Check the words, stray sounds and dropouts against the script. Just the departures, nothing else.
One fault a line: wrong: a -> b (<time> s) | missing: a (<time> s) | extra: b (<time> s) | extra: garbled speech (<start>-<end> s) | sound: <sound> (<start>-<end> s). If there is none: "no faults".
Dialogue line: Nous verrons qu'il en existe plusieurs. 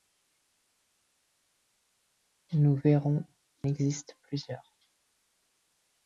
missing: qu'il en (3.2 s)